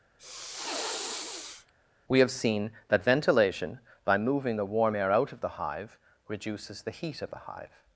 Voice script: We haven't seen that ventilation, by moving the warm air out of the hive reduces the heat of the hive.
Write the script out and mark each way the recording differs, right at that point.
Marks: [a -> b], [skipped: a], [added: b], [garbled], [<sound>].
[sniff] We [haven't -> have] seen that ventilation, by moving the warm air out of the hive reduces the heat of the hive.